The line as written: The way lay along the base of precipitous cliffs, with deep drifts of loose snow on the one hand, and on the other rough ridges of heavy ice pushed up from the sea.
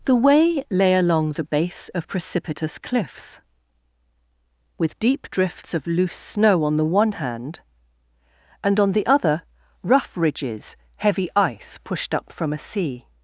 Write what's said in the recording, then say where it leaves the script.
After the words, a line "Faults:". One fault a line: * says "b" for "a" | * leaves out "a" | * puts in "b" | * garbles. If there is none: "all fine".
The way lay along the base of precipitous cliffs, with deep drifts of loose snow on the one hand, and on the other rough ridges heavy ice pushed up from a sea.
Faults:
* leaves out "of"
* says "a" for "the"